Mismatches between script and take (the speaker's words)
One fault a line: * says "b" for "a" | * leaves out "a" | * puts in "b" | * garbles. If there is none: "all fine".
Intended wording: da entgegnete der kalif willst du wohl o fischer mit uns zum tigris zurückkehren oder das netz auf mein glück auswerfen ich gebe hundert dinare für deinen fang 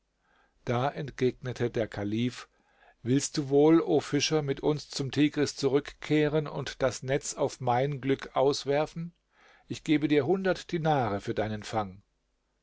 * says "und" for "oder"
* puts in "dir"